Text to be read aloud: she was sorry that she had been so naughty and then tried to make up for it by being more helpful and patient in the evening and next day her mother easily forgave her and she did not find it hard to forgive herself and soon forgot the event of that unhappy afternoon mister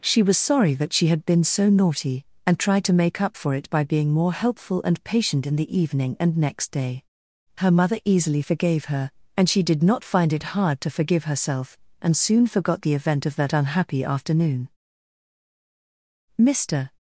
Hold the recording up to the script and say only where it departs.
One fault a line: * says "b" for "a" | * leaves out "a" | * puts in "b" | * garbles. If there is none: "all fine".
* leaves out "then"